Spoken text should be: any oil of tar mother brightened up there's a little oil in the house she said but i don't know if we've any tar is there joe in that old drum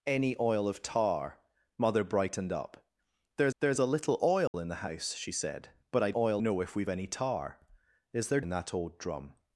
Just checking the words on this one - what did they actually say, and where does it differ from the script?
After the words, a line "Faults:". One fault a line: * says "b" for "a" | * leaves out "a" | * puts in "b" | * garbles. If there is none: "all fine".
any oil of tar mother brightened up there's there's a little oil in the house she said but i oil know if we've any tar is there in that old drum
Faults:
* puts in "there's"
* says "oil" for "don't"
* leaves out "joe"